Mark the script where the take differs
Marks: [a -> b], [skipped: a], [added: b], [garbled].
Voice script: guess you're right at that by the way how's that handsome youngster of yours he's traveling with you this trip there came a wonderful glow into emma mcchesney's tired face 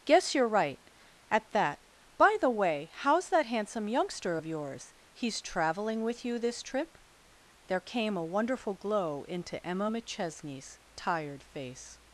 guess you're right at that by the way how's that handsome youngster of yours he's traveling with you this trip there came a wonderful glow into emma mcchesney's tired face